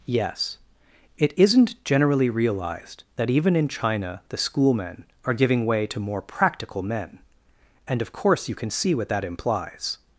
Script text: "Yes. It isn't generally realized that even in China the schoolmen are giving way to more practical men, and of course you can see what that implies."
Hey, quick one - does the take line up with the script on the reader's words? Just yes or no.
yes